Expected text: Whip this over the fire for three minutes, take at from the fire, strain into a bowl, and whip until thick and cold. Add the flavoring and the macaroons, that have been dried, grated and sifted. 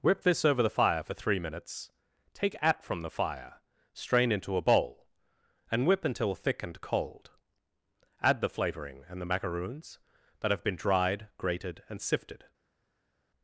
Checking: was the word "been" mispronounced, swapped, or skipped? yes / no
no